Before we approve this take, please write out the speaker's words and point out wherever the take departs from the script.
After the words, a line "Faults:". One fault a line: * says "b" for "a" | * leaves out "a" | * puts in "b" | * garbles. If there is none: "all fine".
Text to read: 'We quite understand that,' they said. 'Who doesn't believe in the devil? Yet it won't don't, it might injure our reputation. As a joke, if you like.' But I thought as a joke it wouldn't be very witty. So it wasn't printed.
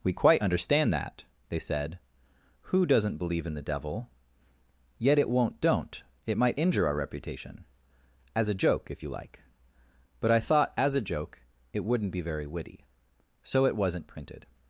'We quite understand that,' they said. 'Who doesn't believe in the devil? Yet it won't don't, it might injure our reputation. As a joke, if you like.' But I thought as a joke it wouldn't be very witty. So it wasn't printed.
Faults:
all fine